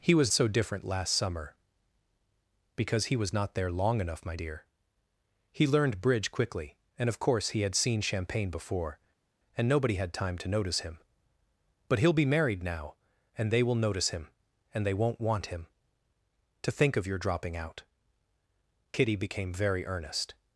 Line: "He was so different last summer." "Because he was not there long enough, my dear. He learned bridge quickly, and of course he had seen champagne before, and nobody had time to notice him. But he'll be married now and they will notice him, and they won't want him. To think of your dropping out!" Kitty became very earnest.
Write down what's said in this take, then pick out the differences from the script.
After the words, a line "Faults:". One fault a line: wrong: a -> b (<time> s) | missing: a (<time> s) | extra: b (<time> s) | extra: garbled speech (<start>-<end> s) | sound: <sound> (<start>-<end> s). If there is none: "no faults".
"He was so different last summer." "Because he was not there long enough, my dear. He learned bridge quickly, and of course he had seen champagne before, and nobody had time to notice him. But he'll be married now and they will notice him, and they won't want him. To think of your dropping out!" Kitty became very earnest.
Faults:
no faults